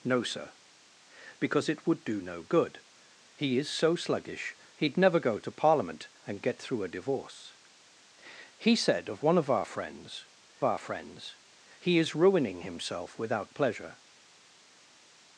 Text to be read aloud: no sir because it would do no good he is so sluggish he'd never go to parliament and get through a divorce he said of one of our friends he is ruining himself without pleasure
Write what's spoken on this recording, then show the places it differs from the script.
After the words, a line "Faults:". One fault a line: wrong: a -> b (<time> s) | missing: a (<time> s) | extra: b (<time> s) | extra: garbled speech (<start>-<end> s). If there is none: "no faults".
no sir because it would do no good he is so sluggish he'd never go to parliament and get through a divorce he said of one of our friends our friends he is ruining himself without pleasure
Faults:
extra: our friends (10.6 s)